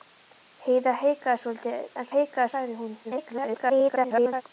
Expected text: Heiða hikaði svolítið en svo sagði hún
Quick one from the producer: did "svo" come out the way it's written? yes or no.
no